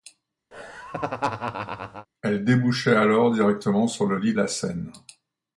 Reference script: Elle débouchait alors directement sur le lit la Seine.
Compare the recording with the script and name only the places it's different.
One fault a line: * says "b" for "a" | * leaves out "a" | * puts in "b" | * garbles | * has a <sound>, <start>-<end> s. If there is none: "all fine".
* has a laugh, 0.5-2.1 s